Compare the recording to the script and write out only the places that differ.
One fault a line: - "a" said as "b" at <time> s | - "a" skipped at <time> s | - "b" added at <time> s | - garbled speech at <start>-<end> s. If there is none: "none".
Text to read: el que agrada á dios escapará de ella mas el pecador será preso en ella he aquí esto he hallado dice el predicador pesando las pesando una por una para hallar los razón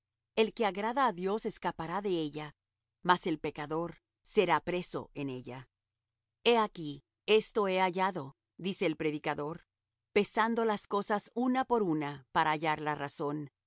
- "pesando" said as "cosas" at 10.9 s
- "los" said as "la" at 12.8 s